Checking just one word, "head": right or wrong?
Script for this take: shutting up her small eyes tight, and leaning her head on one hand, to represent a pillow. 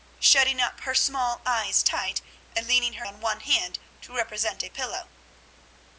wrong